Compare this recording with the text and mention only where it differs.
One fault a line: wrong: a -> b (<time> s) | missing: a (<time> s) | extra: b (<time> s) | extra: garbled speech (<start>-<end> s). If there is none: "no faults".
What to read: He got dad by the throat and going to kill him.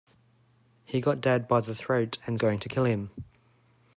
no faults